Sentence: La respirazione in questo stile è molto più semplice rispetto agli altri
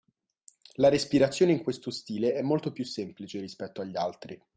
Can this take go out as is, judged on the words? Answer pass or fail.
pass